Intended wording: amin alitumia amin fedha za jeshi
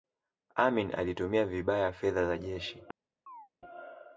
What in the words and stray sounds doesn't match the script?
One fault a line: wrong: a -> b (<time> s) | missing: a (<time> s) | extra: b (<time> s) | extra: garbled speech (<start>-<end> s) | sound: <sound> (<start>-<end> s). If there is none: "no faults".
wrong: amin -> vibaya (1.4 s)
sound: chirp (3.3-3.5 s)